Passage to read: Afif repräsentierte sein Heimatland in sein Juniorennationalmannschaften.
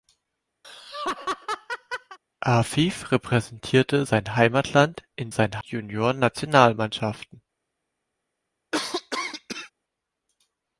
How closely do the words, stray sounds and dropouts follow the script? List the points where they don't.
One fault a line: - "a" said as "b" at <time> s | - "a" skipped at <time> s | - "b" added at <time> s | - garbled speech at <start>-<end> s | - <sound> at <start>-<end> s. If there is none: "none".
- laugh at 0.6-2.2 s
- cough at 8.7-9.7 s